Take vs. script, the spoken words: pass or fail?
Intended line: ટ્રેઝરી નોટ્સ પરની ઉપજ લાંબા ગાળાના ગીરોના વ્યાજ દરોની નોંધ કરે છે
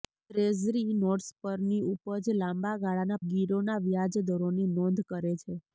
pass